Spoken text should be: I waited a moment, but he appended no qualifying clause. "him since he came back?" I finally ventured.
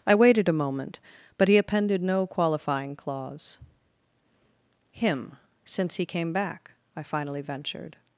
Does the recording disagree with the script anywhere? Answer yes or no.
no